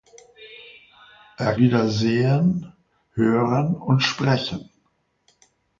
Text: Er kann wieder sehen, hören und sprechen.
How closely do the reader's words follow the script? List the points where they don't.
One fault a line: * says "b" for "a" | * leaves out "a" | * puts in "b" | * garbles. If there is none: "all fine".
* leaves out "kann"